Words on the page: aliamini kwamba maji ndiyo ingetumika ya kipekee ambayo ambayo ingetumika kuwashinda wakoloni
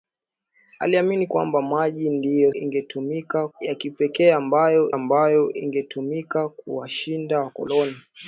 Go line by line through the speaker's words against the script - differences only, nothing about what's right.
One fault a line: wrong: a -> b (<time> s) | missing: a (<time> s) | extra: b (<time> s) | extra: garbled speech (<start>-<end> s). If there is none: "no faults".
no faults